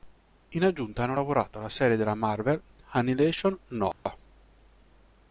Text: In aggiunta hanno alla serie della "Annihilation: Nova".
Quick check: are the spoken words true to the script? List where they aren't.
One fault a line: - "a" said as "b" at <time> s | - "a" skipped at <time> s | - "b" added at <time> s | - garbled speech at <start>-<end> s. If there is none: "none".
- "lavorato" added at 1.1 s
- "Marvel" added at 2.1 s